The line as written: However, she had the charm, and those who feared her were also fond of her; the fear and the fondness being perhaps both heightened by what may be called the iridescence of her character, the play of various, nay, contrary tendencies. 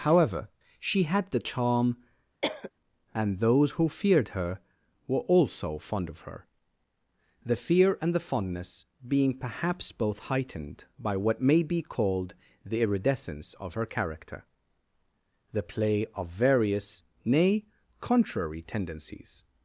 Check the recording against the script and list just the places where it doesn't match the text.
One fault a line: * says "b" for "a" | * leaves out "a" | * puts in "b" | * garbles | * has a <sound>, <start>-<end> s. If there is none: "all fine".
* has a cough, 2.4-2.7 s